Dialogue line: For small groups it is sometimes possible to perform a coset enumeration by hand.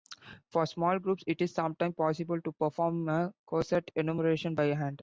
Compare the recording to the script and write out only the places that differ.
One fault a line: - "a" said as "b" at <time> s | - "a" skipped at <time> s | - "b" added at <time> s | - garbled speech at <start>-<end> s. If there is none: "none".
none